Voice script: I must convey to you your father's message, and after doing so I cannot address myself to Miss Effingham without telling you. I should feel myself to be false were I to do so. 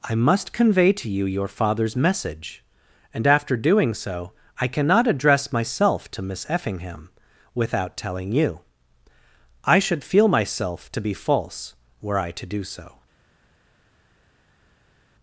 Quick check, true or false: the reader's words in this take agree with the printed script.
true